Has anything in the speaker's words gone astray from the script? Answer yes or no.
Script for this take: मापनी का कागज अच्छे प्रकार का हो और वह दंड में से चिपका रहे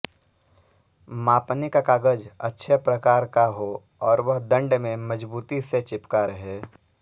yes